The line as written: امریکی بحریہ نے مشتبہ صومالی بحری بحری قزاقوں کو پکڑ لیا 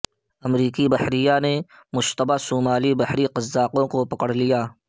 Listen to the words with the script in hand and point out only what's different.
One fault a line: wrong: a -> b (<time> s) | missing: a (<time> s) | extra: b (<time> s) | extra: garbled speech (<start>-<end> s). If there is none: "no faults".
missing: بحری (3.3 s)